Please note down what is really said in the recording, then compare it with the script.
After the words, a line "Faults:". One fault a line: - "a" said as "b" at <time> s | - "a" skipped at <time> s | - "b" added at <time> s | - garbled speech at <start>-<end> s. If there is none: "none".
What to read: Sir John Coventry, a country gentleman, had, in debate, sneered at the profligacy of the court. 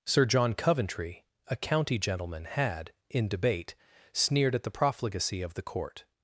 Sir John Coventry, a county gentleman, had, in debate, sneered at the profligacy of the court.
Faults:
- "country" said as "county" at 1.6 s